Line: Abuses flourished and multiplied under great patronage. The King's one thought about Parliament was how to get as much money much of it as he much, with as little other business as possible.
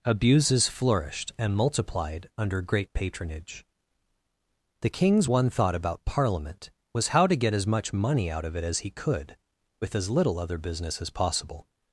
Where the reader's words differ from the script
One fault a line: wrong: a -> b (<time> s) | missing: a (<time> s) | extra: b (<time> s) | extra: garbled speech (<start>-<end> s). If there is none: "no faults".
wrong: much -> out (8.3 s)
wrong: much -> could (8.9 s)